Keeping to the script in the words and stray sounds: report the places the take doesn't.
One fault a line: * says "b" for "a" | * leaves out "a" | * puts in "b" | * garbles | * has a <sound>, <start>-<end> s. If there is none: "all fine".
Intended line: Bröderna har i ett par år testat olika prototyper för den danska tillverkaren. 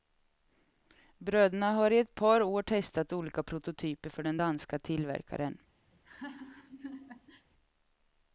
* has a laugh, 5.9-7.5 s